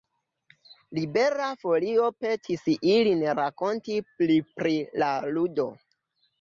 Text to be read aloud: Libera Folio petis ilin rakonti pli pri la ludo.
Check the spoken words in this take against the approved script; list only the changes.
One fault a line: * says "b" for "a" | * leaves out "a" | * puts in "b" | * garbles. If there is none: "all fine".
all fine